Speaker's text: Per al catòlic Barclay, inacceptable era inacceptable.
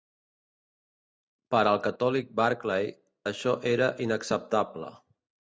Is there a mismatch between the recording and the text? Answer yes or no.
yes